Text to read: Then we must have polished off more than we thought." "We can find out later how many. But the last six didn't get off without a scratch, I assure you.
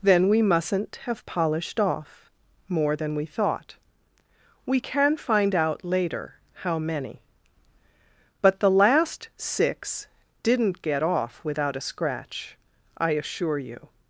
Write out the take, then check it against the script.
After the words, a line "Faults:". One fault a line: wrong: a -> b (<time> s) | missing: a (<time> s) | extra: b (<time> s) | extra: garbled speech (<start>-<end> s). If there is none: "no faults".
Then we mustn't have polished off more than we thought." "We can find out later how many. But the last six didn't get off without a scratch, I assure you.
Faults:
wrong: must -> mustn't (0.4 s)